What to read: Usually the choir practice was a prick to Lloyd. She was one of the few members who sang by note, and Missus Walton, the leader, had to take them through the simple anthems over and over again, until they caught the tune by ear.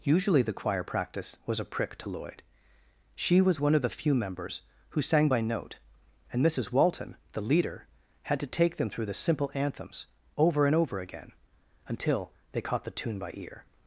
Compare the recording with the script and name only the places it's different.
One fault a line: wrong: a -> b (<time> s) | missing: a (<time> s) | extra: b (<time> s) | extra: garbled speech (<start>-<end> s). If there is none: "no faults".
no faults